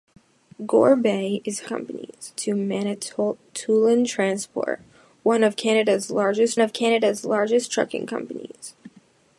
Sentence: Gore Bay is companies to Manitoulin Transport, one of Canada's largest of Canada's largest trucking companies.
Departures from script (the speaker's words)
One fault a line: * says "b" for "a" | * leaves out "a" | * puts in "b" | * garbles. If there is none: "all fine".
all fine